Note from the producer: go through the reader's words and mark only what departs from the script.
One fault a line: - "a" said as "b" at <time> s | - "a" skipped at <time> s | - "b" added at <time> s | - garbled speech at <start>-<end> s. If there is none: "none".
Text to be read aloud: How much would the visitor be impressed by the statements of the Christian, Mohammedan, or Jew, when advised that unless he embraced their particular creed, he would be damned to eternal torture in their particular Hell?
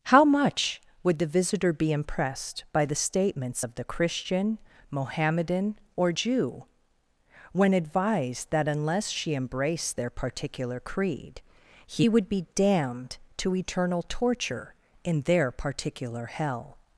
- "he" said as "she" at 9.1 s